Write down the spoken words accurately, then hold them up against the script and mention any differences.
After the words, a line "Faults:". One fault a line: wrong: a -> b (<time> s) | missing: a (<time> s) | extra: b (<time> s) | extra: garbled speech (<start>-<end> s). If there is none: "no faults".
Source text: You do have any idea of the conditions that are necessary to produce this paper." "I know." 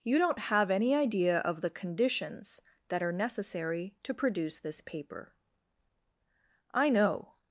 You don't have any idea of the conditions that are necessary to produce this paper." "I know."
Faults:
wrong: do -> don't (0.2 s)